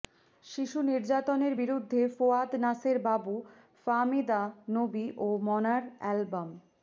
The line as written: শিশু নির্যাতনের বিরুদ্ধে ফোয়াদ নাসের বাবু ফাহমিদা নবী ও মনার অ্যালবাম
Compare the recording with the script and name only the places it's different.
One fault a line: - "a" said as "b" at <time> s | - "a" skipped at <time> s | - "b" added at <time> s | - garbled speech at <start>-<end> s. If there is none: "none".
none